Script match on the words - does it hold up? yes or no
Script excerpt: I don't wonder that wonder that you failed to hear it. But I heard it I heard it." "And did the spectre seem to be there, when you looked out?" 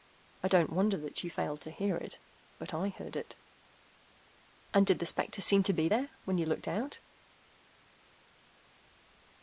no